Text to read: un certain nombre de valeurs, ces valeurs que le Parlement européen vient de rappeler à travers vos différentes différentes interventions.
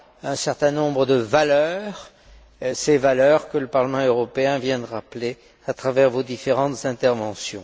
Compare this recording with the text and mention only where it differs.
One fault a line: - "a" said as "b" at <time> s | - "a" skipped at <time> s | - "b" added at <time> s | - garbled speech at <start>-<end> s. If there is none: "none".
- "différentes" skipped at 6.9 s